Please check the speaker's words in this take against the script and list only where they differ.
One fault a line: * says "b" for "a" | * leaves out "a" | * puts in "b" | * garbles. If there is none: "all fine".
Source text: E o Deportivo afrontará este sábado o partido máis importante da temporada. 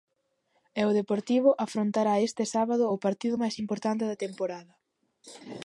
all fine